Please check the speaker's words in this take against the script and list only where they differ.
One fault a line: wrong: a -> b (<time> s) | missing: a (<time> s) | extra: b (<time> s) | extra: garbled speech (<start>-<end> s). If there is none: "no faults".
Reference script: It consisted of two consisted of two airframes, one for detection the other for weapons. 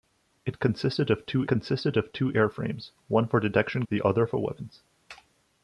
no faults